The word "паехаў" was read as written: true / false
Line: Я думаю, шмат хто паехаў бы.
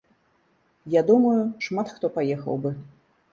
true